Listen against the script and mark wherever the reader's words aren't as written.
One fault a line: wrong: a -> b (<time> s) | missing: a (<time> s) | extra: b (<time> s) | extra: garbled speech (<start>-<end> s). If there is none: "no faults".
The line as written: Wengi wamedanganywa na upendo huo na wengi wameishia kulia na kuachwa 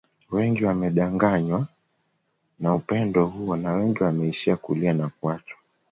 no faults